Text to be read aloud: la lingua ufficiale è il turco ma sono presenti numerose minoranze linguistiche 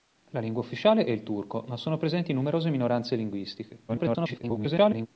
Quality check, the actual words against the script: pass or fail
fail